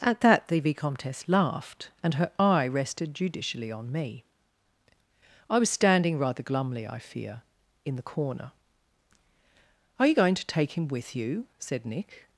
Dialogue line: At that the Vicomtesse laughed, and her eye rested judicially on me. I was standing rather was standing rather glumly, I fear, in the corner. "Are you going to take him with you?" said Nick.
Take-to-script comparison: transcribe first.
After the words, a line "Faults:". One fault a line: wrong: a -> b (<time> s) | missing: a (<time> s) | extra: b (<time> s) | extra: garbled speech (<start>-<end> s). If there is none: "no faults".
At that the Vicomtesse laughed, and her eye rested judicially on me. I was standing rather glumly, I fear, in the corner. "Are you going to take him with you?" said Nick.
Faults:
missing: was standing rather (6.4 s)